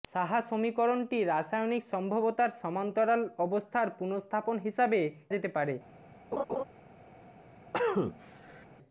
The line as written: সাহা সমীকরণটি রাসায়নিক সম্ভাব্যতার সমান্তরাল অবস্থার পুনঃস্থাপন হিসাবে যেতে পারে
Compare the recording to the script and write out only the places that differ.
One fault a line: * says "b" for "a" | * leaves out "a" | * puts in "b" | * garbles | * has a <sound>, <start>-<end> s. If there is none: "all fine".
* has a laugh, 6.3-6.6 s
* has a cough, 7.7-8.7 s